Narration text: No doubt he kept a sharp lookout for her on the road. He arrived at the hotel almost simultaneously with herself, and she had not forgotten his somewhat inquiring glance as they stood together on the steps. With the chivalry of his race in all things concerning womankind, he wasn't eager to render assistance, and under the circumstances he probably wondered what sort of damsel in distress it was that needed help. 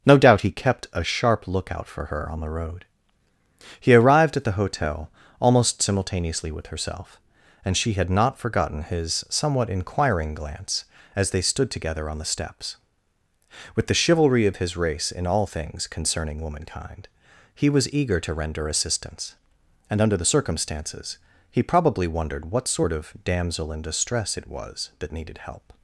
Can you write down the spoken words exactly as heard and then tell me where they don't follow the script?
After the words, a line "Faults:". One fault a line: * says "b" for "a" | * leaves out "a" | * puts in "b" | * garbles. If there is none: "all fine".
No doubt he kept a sharp lookout for her on the road. He arrived at the hotel almost simultaneously with herself, and she had not forgotten his somewhat inquiring glance as they stood together on the steps. With the chivalry of his race in all things concerning womankind, he was eager to render assistance, and under the circumstances he probably wondered what sort of damsel in distress it was that needed help.
Faults:
* says "was" for "wasn't"